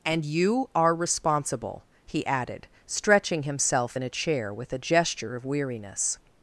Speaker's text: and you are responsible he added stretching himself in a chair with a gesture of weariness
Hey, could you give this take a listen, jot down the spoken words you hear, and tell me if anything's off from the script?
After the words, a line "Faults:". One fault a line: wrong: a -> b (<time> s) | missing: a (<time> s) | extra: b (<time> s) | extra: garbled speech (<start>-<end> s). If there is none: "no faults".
and you are responsible he added stretching himself in a chair with a gesture of weariness
Faults:
no faults